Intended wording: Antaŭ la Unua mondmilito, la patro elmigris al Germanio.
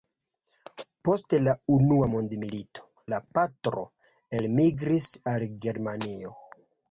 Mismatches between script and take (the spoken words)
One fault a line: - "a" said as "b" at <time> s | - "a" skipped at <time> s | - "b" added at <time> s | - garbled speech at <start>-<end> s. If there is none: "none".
- "Antaŭ" said as "Post" at 1.1 s